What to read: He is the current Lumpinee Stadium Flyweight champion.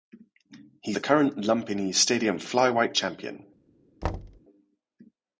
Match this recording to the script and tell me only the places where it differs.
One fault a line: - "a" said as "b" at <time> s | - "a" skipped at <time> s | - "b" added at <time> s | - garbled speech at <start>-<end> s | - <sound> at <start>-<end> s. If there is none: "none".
- "is" skipped at 0.9 s
- thud at 4.0-4.4 s